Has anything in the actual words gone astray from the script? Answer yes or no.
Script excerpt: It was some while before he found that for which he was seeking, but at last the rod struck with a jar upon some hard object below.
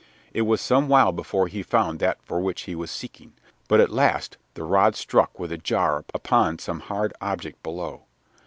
no